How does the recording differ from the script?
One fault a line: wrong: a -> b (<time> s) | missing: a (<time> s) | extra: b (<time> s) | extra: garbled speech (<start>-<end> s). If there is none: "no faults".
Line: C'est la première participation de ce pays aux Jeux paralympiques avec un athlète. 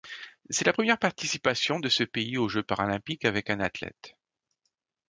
no faults